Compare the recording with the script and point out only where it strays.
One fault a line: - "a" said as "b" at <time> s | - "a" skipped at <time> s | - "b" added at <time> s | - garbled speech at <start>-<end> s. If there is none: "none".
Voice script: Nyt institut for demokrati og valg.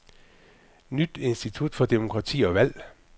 none